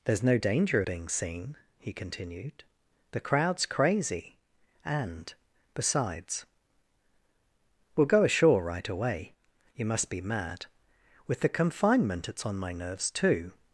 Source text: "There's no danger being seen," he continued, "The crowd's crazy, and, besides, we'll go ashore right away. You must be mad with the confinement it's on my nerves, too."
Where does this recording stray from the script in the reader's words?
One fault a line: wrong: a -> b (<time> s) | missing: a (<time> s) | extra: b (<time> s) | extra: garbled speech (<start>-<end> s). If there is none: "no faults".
no faults